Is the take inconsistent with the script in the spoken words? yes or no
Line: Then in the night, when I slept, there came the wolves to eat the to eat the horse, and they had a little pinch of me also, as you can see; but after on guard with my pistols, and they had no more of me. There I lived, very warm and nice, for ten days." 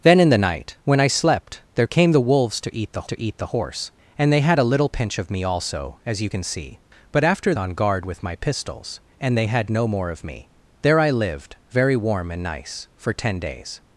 no